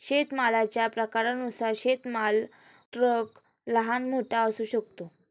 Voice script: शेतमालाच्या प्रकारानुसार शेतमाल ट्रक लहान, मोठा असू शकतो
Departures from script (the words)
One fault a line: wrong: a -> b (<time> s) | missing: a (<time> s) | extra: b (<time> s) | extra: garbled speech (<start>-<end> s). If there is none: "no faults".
no faults